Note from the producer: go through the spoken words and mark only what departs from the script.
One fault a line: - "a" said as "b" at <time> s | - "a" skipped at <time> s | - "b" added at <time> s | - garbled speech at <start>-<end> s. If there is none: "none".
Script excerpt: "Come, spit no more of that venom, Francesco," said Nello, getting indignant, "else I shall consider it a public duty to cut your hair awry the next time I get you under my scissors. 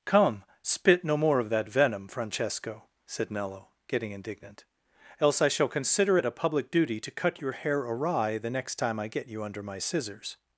none